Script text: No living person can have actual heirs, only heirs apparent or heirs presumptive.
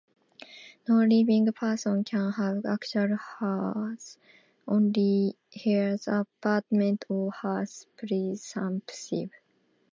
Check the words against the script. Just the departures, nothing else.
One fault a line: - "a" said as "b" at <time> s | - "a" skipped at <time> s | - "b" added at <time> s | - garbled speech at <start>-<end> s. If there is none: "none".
none